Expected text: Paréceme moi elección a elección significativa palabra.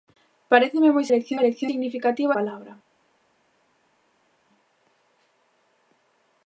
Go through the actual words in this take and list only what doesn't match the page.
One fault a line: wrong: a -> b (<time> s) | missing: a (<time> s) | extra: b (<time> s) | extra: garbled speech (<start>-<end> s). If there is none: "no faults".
no faults